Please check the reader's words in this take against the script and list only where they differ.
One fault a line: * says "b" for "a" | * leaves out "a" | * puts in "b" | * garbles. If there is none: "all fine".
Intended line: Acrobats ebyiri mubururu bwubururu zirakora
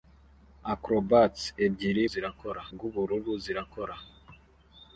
* says "zirakora" for "mubururu"